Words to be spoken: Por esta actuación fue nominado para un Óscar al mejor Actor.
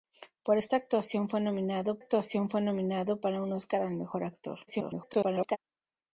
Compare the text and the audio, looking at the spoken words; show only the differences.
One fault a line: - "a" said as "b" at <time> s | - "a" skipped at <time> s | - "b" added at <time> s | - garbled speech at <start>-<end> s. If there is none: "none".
- "actuación fue nominado" added at 2.0 s
- garbled speech at 4.7-5.6 s